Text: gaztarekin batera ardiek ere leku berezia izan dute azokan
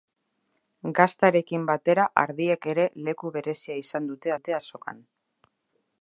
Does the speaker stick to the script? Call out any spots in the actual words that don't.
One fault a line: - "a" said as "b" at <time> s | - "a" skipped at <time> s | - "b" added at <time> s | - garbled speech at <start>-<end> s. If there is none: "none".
- "dute" added at 4.4 s